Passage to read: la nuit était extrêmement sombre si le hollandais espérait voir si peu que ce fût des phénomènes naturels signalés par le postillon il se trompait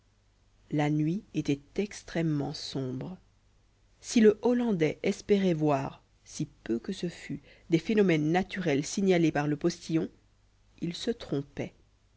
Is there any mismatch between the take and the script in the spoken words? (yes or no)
no